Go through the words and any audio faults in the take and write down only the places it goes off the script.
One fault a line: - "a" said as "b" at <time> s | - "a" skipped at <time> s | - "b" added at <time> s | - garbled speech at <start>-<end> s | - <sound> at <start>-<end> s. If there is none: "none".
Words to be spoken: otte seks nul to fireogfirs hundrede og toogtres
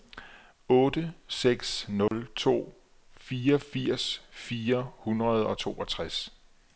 - dropout at 2.1-2.1 s
- "fire" added at 4.3 s